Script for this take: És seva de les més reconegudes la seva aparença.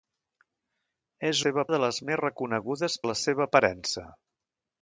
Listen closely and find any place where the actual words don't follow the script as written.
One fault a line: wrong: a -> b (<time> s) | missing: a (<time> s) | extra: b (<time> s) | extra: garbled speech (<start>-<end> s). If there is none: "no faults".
no faults